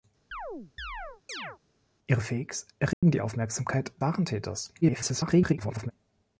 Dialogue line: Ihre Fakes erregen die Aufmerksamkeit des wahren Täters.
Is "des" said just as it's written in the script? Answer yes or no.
no